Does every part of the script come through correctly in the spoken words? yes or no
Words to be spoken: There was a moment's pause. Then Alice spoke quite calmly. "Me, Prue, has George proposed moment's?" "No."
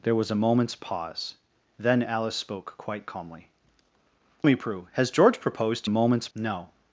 yes